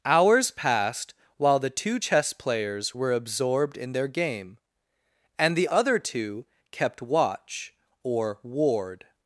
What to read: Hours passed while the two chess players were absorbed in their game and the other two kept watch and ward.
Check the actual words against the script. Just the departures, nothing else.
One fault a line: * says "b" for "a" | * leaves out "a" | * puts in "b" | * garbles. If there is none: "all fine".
* says "or" for "and"